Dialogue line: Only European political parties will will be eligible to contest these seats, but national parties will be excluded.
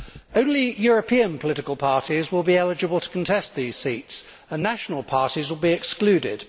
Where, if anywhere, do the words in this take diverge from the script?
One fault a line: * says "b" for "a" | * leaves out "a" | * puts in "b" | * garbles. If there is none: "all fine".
* leaves out "will"
* says "and" for "but"